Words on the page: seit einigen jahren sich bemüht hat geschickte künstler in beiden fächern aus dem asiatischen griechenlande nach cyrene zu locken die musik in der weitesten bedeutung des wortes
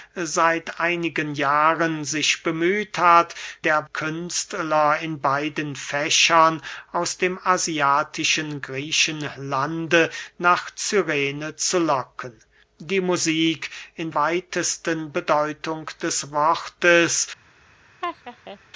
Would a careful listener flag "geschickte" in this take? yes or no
yes